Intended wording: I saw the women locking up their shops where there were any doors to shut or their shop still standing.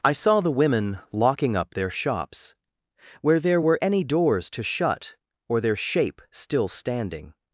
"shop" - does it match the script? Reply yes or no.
no